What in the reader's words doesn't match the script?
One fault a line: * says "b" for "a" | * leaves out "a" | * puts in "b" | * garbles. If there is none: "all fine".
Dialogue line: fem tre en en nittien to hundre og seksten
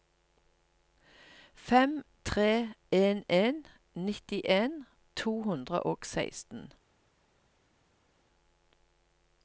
all fine